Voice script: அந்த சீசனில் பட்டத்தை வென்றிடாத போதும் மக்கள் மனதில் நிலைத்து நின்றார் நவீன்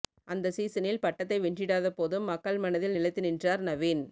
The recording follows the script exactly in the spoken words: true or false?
true